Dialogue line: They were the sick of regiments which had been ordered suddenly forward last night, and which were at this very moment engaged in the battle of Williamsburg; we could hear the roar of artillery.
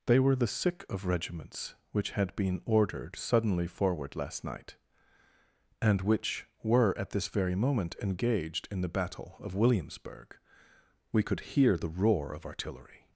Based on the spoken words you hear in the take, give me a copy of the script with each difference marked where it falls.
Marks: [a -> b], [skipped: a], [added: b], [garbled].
They were the sick of regiments which had been ordered suddenly forward last night, and which were at this very moment engaged in the battle of Williamsburg; we could hear the roar of artillery.